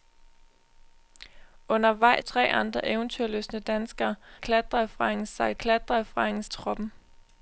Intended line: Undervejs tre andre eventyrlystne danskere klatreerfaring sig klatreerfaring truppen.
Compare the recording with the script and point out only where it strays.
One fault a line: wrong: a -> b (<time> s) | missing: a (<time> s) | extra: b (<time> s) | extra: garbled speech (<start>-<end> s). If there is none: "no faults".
no faults